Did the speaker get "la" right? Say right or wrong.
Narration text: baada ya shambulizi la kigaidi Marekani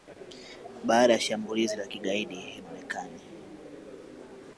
right